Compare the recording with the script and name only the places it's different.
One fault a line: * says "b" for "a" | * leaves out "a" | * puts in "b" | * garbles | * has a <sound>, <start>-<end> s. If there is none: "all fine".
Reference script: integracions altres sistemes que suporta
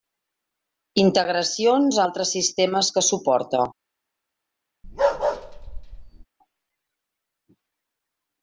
* has a bark, 4.8-6.2 s